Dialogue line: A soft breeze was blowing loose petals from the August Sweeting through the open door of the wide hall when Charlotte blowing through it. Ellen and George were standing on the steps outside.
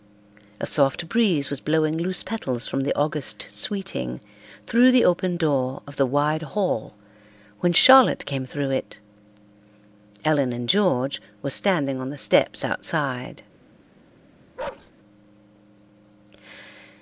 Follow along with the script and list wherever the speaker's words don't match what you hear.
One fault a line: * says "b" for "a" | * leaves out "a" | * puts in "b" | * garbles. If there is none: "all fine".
* says "came" for "blowing"